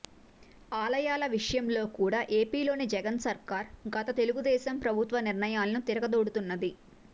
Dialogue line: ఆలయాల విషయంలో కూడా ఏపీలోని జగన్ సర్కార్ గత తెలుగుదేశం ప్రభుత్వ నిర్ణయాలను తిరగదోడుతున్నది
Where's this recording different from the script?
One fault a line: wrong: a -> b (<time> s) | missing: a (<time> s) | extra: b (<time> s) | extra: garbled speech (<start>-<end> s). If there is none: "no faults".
no faults